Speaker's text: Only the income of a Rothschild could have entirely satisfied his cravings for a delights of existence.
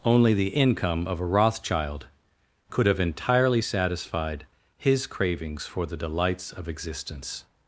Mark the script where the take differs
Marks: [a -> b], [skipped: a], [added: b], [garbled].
Only the income of a Rothschild could have entirely satisfied his cravings for [a -> the] delights of existence.